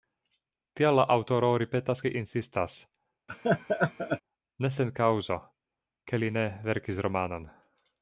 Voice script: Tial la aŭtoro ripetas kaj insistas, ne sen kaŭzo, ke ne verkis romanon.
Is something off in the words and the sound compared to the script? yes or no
yes